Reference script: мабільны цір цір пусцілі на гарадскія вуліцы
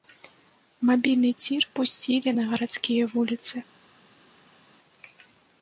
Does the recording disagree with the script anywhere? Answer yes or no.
yes